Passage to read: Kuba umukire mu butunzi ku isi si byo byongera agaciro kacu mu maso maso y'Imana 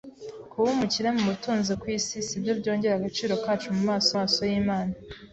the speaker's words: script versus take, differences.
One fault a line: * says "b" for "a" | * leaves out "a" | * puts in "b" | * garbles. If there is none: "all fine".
all fine